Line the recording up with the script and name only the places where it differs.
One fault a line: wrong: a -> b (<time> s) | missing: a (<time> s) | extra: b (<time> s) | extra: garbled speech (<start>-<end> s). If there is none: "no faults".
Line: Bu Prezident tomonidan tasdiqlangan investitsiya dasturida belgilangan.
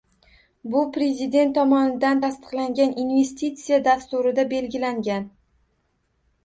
no faults